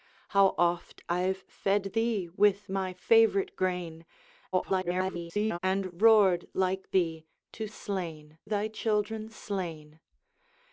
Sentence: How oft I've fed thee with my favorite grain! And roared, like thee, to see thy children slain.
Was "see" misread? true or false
true